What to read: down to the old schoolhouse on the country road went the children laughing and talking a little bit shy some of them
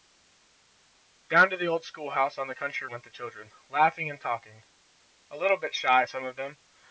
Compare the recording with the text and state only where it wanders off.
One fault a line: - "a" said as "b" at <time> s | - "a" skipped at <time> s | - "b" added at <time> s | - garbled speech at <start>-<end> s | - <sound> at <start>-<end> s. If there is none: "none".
- "road" skipped at 2.9 s